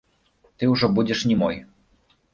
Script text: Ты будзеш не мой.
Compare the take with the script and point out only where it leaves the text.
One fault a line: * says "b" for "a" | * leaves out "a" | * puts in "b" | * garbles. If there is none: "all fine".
* puts in "ўжо"